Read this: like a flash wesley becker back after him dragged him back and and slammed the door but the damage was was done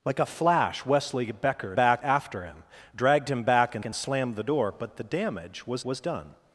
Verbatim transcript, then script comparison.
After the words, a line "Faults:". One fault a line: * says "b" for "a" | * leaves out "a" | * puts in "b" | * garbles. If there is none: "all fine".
like a flash wesley becker back after him dragged him back and and slammed the door but the damage was was done
Faults:
all fine